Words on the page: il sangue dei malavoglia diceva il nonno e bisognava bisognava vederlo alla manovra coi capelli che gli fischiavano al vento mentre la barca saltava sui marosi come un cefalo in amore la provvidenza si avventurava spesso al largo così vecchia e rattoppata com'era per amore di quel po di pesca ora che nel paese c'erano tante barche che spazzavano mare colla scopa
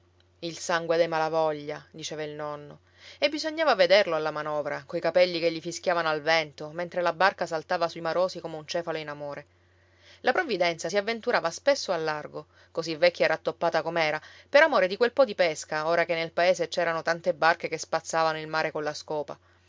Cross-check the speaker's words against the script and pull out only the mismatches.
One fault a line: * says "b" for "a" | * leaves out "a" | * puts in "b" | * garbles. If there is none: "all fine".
* leaves out "bisognava"
* puts in "il"